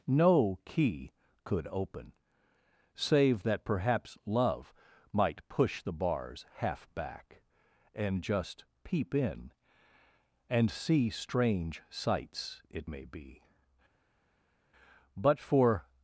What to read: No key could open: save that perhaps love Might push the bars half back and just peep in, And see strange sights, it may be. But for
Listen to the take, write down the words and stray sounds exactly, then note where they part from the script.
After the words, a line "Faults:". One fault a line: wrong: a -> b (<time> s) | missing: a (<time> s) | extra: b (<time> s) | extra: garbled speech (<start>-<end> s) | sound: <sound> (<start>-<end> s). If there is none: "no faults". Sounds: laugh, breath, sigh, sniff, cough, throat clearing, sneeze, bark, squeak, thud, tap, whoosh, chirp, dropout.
No key could open: save that perhaps love Might push the bars half back and just peep in, And see strange sights, it may be. But for
Faults:
no faults